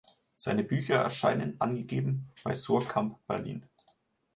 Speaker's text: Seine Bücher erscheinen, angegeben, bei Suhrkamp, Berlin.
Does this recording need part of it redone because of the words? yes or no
no